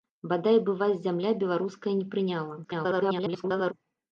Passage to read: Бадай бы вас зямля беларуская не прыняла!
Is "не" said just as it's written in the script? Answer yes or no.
yes